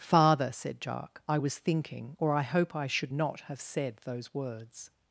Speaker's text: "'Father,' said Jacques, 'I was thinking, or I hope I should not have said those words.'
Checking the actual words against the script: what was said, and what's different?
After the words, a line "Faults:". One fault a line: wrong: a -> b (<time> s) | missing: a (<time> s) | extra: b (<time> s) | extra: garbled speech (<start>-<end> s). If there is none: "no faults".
"'Father,' said Jacques, 'I was thinking, or I hope I should not have said those words.'
Faults:
no faults